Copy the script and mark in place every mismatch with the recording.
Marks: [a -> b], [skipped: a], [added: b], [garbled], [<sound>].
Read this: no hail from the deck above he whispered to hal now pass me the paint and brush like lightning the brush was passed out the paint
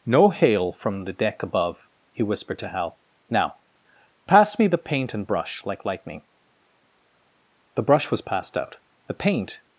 no hail from the deck above he whispered to hal now pass me the paint and brush like lightning the brush was passed out the paint